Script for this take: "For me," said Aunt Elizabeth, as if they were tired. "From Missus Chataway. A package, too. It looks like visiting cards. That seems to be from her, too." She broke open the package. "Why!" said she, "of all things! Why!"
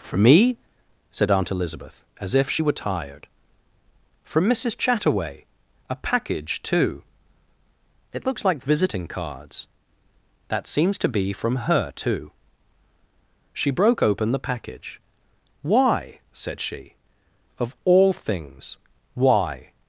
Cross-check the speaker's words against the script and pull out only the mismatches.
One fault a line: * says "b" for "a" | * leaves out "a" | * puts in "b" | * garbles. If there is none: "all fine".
* says "she" for "they"